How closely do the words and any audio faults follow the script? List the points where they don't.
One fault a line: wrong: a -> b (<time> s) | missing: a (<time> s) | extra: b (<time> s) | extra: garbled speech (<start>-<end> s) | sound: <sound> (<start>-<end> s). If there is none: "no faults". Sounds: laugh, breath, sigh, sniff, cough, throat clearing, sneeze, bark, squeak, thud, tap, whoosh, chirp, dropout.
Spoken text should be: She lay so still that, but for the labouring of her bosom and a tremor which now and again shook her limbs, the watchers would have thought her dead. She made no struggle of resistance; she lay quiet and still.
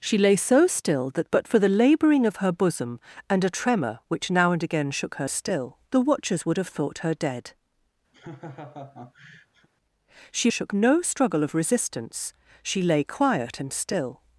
wrong: limbs -> still (5.3 s)
sound: laugh (8.1-9.7 s)
wrong: made -> shook (10.5 s)